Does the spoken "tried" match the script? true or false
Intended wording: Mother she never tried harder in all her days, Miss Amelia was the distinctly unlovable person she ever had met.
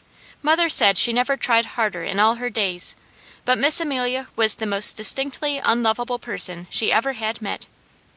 true